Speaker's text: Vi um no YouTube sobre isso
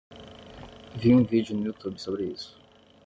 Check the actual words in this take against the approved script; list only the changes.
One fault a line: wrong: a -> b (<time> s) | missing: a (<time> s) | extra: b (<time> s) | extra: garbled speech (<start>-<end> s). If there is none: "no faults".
extra: vídeo (1.2 s)